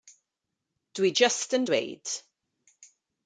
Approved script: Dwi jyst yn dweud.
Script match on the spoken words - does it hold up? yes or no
yes